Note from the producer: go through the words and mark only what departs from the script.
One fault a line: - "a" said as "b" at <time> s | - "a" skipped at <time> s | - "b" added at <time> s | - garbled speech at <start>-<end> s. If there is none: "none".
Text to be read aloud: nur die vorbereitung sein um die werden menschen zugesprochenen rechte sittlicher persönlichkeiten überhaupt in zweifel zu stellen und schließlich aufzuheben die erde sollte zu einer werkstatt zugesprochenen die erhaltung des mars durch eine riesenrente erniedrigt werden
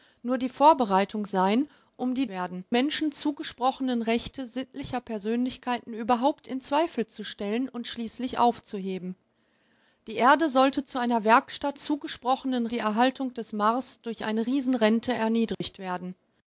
none